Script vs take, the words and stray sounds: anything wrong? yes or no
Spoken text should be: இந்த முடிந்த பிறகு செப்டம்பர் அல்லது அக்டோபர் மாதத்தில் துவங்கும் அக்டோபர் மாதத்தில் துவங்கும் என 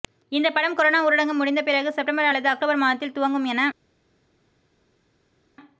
yes